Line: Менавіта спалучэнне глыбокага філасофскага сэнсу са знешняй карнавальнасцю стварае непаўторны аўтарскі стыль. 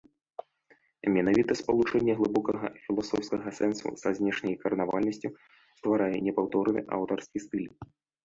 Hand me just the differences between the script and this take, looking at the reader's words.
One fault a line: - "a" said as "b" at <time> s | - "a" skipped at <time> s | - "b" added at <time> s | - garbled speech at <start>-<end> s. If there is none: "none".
none